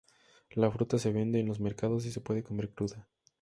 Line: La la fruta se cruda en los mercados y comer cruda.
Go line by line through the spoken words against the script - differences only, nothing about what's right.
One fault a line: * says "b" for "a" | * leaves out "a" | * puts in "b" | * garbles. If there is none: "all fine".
* leaves out "la"
* says "vende" for "cruda"
* puts in "se puede"